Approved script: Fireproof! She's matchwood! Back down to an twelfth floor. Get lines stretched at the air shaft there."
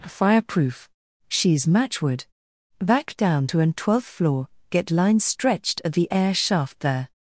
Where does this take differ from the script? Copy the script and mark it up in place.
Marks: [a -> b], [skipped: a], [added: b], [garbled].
Fireproof! She's matchwood! Back down to an twelfth floor. Get lines stretched at the air shaft there."